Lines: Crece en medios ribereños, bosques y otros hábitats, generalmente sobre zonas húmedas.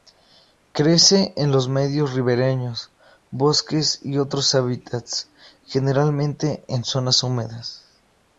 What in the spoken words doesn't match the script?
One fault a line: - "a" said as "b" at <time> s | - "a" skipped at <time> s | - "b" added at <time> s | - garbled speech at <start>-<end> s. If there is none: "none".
- "los" added at 1.5 s
- "sobre" said as "en" at 6.7 s